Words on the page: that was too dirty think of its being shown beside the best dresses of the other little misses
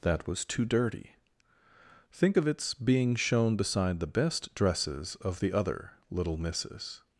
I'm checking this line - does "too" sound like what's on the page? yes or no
yes